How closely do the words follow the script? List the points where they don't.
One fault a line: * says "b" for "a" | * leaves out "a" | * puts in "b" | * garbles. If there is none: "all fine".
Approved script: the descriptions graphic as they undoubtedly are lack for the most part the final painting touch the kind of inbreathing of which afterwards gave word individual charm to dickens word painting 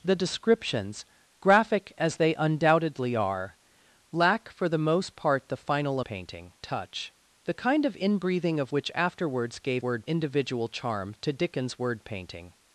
all fine